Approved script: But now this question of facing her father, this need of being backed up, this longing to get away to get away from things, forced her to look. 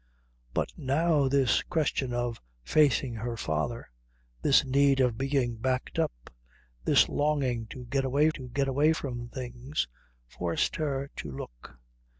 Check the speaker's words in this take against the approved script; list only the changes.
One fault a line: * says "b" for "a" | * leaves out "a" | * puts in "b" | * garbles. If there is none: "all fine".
all fine